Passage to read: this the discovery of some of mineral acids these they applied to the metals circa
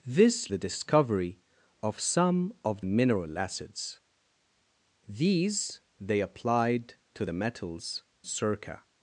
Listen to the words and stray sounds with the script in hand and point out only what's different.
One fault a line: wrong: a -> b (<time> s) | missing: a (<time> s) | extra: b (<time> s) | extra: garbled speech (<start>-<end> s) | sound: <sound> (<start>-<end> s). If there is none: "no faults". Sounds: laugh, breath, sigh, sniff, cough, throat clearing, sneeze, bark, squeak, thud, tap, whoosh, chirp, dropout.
no faults